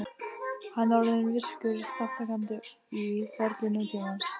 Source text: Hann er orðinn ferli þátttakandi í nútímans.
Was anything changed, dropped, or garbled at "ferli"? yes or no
yes